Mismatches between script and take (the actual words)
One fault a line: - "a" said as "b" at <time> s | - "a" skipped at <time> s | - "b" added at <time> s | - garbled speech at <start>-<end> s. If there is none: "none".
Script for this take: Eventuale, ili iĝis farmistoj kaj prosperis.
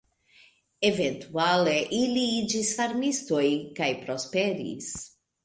none